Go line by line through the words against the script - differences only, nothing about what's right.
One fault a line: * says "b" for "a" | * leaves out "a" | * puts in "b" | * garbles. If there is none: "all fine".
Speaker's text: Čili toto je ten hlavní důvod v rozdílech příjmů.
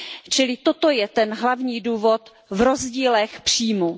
all fine